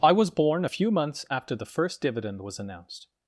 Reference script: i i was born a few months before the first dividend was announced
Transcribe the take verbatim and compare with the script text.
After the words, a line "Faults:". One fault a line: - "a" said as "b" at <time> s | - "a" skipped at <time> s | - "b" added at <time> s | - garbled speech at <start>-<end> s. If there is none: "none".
i was born a few months after the first dividend was announced
Faults:
- "i" skipped at 0.1 s
- "before" said as "after" at 1.3 s